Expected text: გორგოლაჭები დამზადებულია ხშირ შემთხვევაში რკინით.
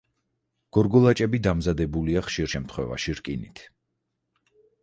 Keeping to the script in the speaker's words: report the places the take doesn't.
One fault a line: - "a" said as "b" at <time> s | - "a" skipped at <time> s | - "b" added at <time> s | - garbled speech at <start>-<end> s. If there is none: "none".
none